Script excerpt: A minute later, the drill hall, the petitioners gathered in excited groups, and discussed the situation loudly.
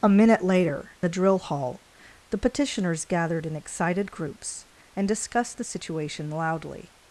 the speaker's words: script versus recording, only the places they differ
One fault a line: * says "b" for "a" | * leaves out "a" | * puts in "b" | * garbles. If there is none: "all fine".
all fine